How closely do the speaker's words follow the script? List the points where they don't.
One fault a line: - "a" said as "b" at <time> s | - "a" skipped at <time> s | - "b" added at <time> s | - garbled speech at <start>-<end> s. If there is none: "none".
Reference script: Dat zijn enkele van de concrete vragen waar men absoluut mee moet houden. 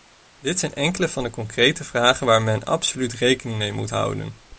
- "Dat" said as "Dit" at 0.4 s
- "rekening" added at 3.1 s